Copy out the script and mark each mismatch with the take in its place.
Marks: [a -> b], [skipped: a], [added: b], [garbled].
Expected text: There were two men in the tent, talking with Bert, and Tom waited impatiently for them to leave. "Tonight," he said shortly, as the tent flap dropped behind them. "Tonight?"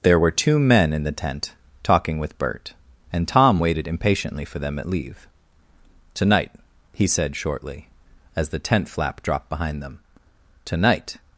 There were two men in the tent, talking with Bert, and Tom waited impatiently for them [to -> at] leave. "Tonight," he said shortly, as the tent flap dropped behind them. "Tonight?"